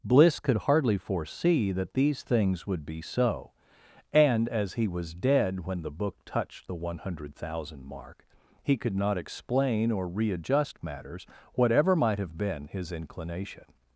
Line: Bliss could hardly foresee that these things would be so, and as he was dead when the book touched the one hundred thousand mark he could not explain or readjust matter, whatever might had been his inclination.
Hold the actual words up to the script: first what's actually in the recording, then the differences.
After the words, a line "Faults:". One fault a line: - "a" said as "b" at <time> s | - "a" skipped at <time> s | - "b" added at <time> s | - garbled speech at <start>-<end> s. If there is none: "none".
Bliss could hardly foresee that these things would be so, and as he was dead when the book touched the one hundred thousand mark he could not explain or readjust matters, whatever might have been his inclination.
Faults:
- "matter" said as "matters" at 10.8 s
- "had" said as "have" at 12.2 s